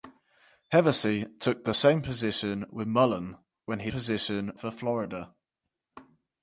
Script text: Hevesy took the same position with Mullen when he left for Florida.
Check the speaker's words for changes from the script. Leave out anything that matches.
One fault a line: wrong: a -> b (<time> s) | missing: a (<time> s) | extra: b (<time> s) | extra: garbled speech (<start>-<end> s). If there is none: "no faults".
wrong: left -> position (3.9 s)